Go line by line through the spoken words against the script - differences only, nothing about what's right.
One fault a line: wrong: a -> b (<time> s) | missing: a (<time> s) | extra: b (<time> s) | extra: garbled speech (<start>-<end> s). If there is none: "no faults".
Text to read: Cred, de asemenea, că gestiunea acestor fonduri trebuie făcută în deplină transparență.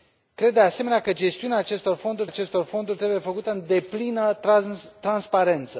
extra: acestor fonduri (2.2 s)